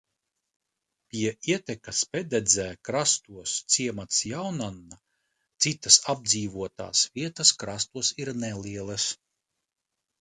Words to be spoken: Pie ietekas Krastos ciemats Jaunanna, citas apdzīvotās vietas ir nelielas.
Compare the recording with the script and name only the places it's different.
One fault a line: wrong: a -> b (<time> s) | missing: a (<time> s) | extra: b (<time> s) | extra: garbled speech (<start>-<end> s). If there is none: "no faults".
extra: Pededzē (2.1 s)
extra: krastos (7.7 s)